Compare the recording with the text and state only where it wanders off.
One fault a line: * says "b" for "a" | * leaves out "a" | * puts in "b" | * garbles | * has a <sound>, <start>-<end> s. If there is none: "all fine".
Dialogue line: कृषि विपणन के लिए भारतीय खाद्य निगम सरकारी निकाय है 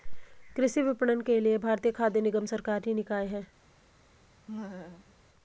* has a laugh, 4.5-5.1 s